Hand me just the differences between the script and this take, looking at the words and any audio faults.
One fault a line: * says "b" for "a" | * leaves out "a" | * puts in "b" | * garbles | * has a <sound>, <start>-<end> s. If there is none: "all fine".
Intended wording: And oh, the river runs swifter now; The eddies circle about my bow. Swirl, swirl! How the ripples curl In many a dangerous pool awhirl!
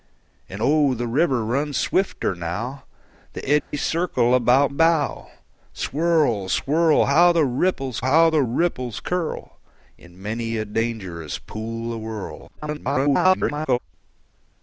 * has a dropout, 3.6-3.7 s
* leaves out "my"
* puts in "how the ripples"
* garbles